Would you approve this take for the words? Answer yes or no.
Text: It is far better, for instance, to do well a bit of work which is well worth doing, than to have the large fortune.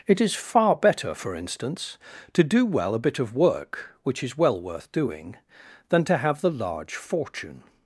yes